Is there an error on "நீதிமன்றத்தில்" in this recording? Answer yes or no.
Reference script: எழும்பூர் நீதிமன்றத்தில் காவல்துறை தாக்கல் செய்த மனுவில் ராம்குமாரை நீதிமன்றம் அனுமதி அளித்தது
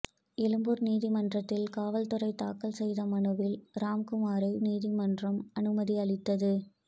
no